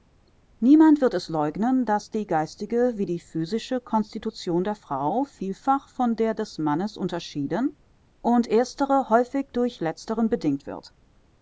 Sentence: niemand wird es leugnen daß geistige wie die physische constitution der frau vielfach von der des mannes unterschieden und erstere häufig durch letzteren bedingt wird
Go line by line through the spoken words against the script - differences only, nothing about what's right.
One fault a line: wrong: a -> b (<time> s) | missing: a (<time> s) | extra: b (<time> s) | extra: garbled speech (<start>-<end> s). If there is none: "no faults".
extra: die (2.1 s)